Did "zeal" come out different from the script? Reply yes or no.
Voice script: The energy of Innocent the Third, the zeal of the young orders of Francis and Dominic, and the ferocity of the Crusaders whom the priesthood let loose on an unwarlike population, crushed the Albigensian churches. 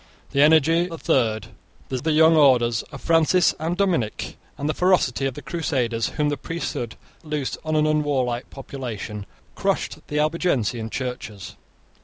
yes